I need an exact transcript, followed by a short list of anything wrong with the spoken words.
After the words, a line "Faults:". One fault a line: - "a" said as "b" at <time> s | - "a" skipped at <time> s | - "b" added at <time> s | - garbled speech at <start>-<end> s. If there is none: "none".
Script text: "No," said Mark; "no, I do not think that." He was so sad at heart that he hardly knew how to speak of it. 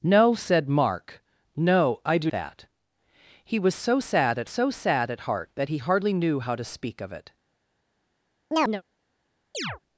"No," said Mark; "no, I do that." He was so sad at so sad at heart that he hardly knew how to speak of it.
Faults:
- "not think" skipped at 2.3 s
- "so sad at" added at 4.4 s